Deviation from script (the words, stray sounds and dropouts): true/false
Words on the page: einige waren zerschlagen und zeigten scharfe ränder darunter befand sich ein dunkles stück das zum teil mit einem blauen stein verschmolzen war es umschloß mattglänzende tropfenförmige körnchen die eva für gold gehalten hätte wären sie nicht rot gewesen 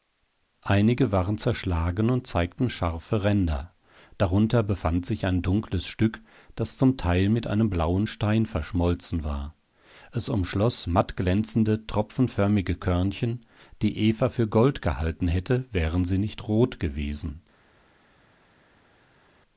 false